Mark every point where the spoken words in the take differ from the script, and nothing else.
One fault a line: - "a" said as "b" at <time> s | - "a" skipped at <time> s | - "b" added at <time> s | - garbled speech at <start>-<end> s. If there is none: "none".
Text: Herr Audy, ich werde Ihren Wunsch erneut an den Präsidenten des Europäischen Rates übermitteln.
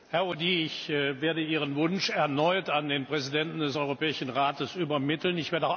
none